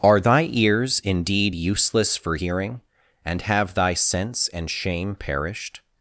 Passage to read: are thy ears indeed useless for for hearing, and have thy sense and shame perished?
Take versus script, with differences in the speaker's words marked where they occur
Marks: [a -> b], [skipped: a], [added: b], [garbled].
are thy ears indeed useless for [skipped: for] hearing, and have thy sense and shame perished?